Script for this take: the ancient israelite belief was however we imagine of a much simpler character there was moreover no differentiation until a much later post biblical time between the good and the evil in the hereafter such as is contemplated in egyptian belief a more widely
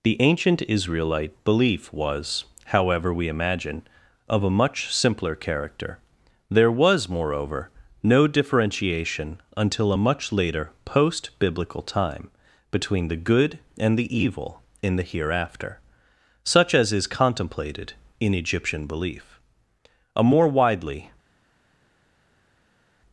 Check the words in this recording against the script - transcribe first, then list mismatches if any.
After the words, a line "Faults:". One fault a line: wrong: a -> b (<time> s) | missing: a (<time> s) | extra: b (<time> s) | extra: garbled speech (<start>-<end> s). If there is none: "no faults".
the ancient israelite belief was however we imagine of a much simpler character there was moreover no differentiation until a much later post biblical time between the good and the evil in the hereafter such as is contemplated in egyptian belief a more widely
Faults:
no faults